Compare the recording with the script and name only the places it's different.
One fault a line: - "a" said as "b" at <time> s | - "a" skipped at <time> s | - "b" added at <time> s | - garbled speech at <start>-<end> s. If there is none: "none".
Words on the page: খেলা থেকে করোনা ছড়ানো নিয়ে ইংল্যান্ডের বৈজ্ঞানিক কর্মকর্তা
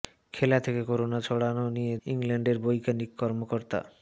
none